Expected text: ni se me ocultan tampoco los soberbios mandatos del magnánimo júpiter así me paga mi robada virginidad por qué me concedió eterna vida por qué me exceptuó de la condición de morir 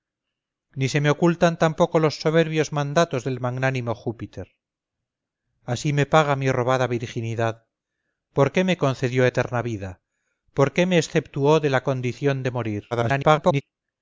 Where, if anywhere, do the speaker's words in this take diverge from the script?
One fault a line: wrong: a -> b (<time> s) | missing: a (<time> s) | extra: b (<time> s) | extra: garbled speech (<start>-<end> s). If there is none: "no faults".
extra: garbled speech (12.9-13.6 s)